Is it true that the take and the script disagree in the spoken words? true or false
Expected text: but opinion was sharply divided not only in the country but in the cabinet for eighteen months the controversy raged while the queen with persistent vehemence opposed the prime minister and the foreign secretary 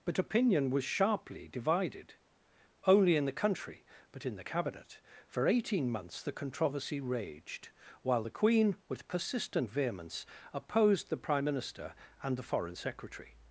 true